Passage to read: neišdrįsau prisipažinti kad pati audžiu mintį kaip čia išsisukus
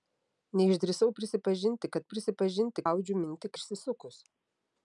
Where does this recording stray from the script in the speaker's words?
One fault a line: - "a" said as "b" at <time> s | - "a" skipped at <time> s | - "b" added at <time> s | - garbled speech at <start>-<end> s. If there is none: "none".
- "pati" said as "prisipažinti" at 2.1 s
- "kaip čia" skipped at 3.5 s